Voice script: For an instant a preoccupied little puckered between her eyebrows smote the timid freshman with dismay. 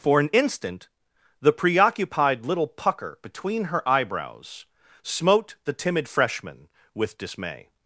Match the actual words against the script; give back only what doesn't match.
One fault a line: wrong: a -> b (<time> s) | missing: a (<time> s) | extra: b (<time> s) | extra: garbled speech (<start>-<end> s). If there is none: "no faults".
wrong: a -> the (1.4 s)
wrong: puckered -> pucker (2.7 s)